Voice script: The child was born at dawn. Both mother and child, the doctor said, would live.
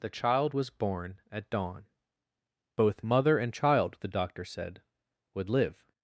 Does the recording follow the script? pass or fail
pass